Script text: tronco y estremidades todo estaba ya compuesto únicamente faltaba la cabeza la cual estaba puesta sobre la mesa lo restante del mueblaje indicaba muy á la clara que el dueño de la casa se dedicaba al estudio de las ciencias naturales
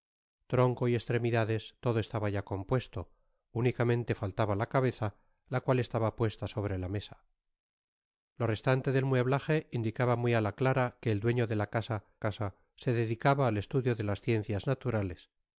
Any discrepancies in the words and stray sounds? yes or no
yes